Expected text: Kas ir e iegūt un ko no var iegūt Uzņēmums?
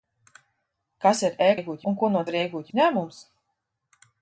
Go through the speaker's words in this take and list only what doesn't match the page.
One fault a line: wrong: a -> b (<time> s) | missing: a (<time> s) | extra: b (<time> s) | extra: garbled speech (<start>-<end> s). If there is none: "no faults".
no faults